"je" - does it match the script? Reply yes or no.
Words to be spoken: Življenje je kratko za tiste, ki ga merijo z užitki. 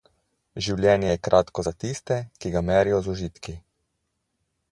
yes